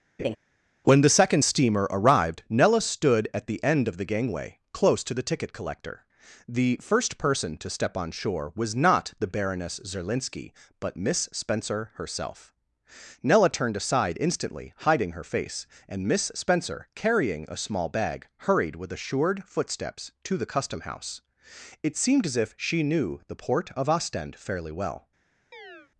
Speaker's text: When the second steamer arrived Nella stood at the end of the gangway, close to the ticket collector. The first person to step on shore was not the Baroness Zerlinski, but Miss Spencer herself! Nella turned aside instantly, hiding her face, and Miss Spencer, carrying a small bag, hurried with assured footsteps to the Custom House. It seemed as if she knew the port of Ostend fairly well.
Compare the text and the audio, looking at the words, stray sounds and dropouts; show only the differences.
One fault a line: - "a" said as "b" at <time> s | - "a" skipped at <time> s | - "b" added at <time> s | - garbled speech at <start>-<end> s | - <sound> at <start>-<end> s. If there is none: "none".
- laugh at 0.2-0.4 s
- chirp at 25.5-25.9 s